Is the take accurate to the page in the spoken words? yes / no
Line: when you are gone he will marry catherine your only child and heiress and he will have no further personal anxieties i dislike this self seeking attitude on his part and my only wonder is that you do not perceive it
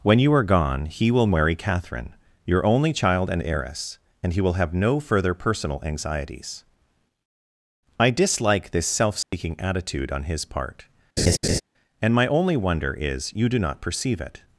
no